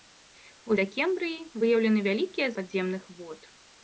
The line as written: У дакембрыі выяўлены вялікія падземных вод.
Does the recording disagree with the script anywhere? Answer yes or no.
no